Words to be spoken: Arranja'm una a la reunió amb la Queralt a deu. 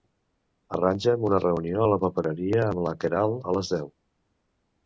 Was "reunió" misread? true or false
true